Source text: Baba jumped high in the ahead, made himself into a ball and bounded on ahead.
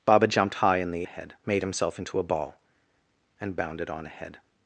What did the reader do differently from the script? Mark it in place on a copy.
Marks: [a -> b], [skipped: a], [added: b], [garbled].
Baba jumped high in the ahead, made himself into a ball and bounded on ahead.